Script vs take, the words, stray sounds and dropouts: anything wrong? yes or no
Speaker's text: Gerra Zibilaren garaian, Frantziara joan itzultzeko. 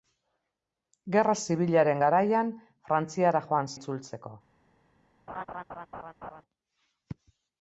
yes